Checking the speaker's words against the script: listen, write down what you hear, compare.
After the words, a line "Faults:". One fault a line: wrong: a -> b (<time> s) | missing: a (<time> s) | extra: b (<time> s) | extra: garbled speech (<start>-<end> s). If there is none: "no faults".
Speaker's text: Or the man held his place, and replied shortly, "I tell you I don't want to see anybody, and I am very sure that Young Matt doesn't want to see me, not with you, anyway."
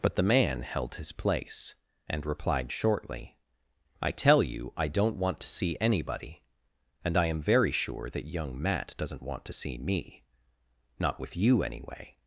But the man held his place, and replied shortly, "I tell you I don't want to see anybody, and I am very sure that Young Matt doesn't want to see me, not with you, anyway."
Faults:
wrong: Or -> But (0.0 s)